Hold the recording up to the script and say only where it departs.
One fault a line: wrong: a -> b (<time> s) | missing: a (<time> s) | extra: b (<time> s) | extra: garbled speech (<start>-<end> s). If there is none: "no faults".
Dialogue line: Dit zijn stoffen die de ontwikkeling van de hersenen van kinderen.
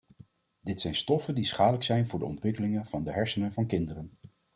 extra: schadelijk zijn voor (1.4 s)